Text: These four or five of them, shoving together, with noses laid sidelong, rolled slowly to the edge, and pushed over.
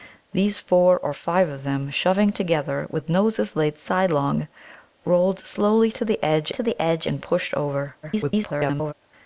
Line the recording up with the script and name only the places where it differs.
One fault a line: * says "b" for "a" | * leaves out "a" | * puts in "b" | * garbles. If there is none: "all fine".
* puts in "to the edge"
* garbles